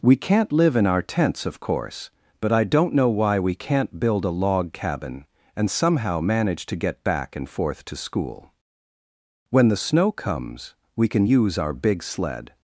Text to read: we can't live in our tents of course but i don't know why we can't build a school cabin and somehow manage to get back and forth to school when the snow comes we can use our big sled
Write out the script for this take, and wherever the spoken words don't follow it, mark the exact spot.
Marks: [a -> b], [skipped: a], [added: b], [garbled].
we can't live in our tents of course but i don't know why we can't build a [school -> log] cabin and somehow manage to get back and forth to school when the snow comes we can use our big sled